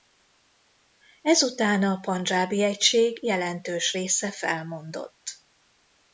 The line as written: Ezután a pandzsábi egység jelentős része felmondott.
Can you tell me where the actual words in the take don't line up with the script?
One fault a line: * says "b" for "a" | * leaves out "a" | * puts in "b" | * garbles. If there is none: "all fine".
all fine